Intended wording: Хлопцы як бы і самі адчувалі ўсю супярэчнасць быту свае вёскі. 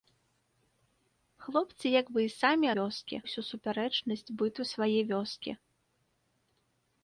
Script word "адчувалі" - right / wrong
wrong